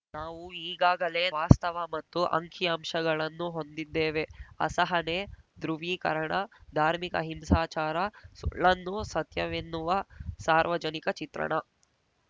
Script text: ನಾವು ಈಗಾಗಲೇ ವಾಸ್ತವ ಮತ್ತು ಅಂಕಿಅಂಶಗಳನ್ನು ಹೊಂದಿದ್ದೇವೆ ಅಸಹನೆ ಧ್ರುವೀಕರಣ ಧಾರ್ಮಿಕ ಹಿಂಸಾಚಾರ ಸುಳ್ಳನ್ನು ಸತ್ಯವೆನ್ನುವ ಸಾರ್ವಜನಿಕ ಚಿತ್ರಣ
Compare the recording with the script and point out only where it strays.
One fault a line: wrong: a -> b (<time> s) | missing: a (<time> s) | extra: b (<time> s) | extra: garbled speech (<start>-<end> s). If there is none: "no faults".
no faults